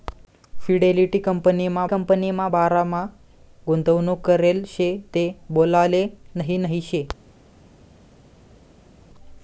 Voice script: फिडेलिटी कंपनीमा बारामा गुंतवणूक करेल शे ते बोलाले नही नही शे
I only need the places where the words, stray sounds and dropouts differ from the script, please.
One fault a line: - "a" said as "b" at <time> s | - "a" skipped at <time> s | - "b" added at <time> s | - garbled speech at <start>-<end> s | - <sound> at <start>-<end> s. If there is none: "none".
- "कंपनीमा" added at 1.8 s